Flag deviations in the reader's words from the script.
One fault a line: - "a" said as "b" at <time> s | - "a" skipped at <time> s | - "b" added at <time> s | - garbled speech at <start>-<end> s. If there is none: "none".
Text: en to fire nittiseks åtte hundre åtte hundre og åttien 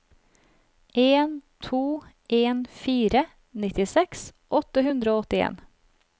- "en" added at 2.3 s
- "åtte hundre" skipped at 5.2 s